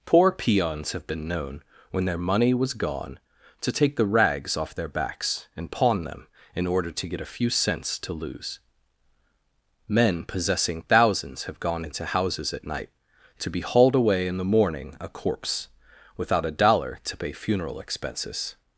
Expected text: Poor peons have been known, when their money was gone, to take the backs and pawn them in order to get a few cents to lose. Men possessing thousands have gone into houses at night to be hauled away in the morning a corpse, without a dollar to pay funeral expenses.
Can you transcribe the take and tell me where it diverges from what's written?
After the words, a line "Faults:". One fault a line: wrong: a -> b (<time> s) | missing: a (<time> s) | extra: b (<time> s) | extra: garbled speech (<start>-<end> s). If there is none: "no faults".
Poor peons have been known, when their money was gone, to take the rags off their backs and pawn them in order to get a few cents to lose. Men possessing thousands have gone into houses at night to be hauled away in the morning a corpse, without a dollar to pay funeral expenses.
Faults:
extra: rags off their (4.0 s)